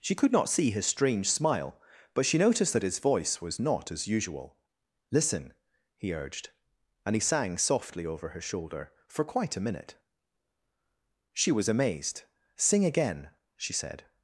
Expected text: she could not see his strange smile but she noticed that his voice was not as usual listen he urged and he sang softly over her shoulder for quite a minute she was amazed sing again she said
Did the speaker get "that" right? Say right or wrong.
right